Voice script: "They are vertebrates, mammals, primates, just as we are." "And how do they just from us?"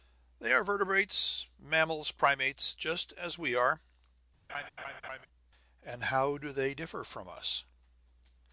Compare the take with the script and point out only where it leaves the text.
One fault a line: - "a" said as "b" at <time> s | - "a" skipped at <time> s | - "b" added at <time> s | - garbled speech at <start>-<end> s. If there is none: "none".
- "just" said as "differ" at 6.7 s